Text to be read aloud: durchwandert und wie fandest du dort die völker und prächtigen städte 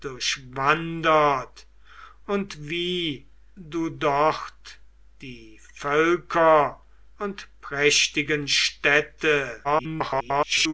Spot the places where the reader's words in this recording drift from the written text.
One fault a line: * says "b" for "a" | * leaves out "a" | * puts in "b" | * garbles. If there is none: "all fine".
* leaves out "fandest"
* garbles